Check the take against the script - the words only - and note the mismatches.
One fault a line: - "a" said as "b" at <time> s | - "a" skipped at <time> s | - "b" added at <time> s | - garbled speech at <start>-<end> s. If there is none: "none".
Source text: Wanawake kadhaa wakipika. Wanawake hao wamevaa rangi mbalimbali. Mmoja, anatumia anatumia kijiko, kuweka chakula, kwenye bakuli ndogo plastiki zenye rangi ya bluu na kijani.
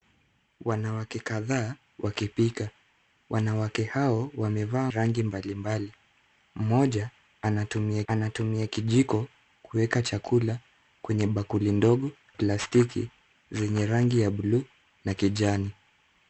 none